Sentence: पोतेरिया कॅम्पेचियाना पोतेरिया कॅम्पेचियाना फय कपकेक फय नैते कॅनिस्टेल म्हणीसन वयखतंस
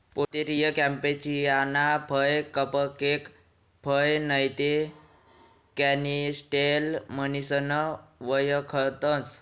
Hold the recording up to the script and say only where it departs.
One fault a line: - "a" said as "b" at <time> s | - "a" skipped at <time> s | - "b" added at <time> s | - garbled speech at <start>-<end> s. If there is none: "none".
- "पोतेरिया कॅम्पेचियाना" skipped at 1.9 s